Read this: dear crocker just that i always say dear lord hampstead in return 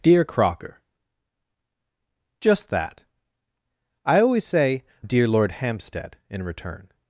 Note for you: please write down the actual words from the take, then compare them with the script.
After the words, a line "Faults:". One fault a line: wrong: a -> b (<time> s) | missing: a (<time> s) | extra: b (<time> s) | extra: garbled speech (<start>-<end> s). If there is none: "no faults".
dear crocker just that i always say dear lord hampstead in return
Faults:
no faults